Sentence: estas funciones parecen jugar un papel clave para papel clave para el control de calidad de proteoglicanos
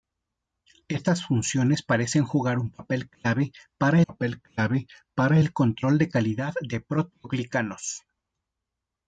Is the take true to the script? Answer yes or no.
yes